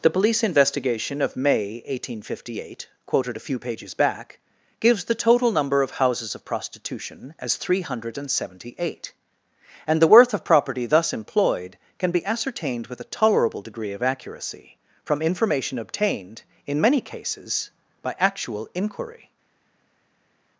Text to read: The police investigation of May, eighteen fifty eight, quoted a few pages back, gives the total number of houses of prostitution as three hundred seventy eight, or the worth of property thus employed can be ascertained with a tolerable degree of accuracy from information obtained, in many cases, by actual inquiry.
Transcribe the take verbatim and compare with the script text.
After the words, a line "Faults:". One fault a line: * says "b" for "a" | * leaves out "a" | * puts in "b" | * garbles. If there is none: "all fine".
The police investigation of May, eighteen fifty eight, quoted a few pages back, gives the total number of houses of prostitution as three hundred seventy eight, and the worth of property thus employed can be ascertained with a tolerable degree of accuracy from information obtained, in many cases, by actual inquiry.
Faults:
* says "and" for "or"